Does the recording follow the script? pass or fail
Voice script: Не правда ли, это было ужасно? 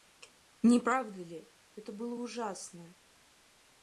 pass